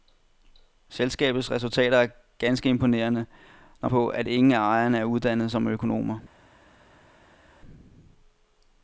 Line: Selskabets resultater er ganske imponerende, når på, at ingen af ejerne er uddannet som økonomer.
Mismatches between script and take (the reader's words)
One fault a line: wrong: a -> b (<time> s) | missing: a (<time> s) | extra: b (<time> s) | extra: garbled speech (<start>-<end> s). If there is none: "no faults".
no faults